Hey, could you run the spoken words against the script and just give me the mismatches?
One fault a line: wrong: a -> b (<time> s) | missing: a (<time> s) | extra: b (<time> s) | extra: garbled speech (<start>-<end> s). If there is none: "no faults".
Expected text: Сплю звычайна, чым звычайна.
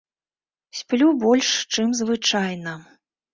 wrong: звычайна -> больш (1.2 s)